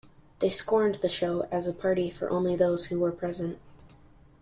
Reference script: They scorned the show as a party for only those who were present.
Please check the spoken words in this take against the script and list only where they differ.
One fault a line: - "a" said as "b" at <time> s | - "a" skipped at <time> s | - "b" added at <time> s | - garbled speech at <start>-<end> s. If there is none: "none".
none